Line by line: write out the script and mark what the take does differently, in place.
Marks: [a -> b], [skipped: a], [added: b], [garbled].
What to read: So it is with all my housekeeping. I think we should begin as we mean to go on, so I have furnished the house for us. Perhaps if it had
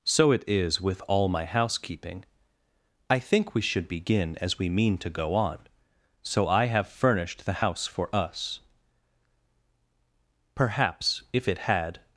So it is with all my housekeeping. I think we should begin as we mean to go on, so I have furnished the house for us. Perhaps if it had